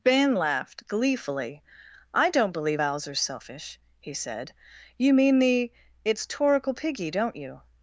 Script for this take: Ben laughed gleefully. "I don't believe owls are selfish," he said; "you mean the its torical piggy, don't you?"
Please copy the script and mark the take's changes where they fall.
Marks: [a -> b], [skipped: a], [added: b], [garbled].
Ben laughed gleefully. "I don't believe owls are selfish," he said; "you mean the its torical piggy, don't you?"